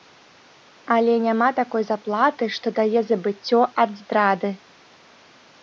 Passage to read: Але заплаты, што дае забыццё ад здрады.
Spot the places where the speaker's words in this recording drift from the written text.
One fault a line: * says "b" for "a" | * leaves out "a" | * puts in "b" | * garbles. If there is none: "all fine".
* puts in "няма такой"